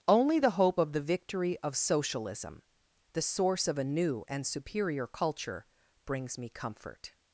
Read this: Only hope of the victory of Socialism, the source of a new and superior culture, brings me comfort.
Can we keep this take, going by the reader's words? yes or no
no